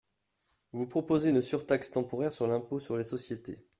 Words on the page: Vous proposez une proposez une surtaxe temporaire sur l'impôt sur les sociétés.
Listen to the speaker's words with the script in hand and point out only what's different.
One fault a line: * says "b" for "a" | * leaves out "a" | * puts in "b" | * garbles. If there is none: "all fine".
* leaves out "proposez une"